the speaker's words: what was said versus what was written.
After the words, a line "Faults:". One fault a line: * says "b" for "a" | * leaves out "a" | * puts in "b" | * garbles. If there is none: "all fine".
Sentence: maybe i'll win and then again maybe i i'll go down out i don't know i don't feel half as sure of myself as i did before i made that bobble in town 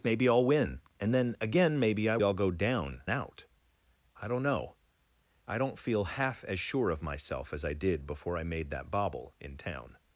maybe i'll win and then again maybe i i'll go down out i don't know i don't feel half as sure of myself as i did before i made that bobble in town
Faults:
all fine